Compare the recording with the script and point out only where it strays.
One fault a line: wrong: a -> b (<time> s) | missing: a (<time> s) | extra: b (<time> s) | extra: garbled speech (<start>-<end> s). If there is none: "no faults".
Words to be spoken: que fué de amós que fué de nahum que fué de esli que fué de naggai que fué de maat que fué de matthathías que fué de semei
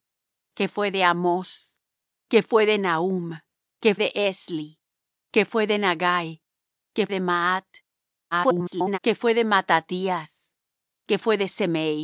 missing: fué (3.9 s)
missing: fué (7.0 s)
extra: garbled speech (8.3-9.0 s)